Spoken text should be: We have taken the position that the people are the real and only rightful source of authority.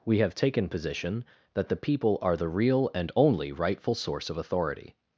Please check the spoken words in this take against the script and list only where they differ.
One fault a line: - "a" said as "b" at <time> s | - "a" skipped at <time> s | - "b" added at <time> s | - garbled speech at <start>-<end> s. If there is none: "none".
- "the" skipped at 0.7 s